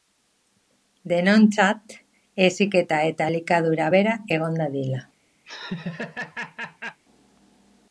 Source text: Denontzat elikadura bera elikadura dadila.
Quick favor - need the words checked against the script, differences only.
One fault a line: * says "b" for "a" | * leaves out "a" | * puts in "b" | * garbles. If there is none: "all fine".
* puts in "heziketa eta"
* says "egon" for "elikadura"